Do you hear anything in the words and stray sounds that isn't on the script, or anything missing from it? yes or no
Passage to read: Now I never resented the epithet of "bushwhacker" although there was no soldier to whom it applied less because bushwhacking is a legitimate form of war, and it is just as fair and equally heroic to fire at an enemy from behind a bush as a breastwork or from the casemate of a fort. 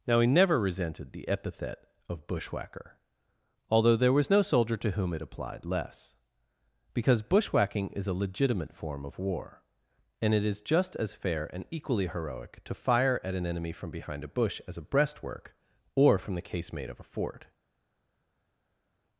yes